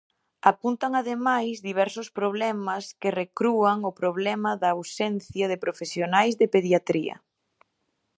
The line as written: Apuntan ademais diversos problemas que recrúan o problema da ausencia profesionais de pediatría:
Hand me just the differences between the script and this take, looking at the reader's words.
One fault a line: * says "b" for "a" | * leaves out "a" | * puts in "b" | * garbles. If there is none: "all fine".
* puts in "de"